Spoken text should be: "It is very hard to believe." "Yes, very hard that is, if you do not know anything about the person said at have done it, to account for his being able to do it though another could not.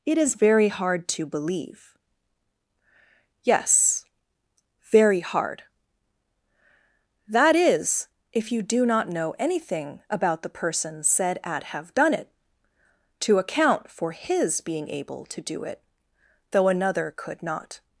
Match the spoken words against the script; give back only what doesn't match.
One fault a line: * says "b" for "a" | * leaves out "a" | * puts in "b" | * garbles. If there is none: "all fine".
all fine